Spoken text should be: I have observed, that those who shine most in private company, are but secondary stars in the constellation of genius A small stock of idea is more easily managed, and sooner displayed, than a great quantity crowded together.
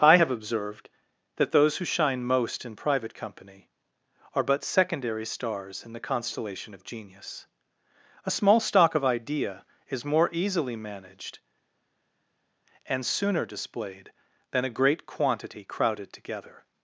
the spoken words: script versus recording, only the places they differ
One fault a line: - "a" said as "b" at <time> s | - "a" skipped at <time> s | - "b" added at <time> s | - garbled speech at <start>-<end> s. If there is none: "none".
none